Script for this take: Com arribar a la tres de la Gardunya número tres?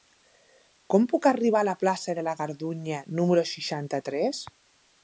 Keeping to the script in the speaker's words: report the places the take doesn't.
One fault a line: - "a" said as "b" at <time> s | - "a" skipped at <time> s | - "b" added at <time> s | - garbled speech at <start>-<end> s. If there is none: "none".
- "puc" added at 1.1 s
- "tres" said as "plaça" at 1.8 s
- "seixanta" added at 3.6 s